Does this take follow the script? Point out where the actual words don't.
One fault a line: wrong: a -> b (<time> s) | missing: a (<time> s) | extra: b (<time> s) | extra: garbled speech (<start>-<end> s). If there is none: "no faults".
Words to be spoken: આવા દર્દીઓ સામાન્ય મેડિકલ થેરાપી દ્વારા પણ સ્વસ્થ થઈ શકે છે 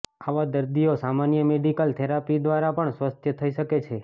no faults